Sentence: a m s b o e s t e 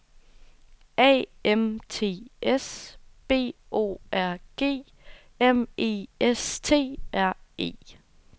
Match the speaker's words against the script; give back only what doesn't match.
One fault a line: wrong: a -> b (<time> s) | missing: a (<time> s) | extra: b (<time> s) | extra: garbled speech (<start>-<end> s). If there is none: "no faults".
extra: t (1.9 s)
extra: r g m (4.1 s)
extra: r (7.1 s)